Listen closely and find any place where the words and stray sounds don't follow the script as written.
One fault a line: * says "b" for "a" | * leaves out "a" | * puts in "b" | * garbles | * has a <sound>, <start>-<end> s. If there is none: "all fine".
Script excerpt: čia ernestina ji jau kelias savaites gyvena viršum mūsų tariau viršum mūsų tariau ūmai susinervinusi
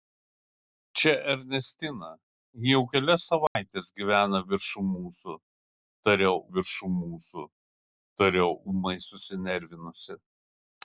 * has a dropout, 3.5-3.6 s